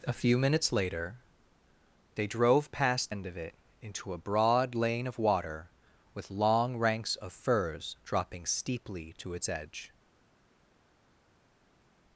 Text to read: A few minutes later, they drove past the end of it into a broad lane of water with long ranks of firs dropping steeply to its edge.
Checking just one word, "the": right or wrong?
wrong